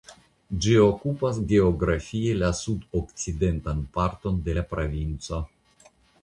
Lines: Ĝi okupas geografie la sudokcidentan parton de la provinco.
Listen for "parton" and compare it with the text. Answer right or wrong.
right